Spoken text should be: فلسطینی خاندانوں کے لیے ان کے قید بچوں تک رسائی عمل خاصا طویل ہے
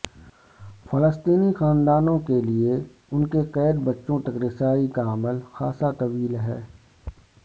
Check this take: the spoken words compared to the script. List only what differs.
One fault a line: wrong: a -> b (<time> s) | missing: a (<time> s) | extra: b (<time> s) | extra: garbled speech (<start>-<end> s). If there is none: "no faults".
extra: کا (4.9 s)